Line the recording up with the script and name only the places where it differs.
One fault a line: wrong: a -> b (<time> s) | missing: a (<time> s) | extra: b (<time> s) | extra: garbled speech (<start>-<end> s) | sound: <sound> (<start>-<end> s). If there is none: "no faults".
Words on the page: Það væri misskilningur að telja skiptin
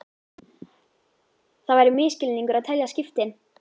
no faults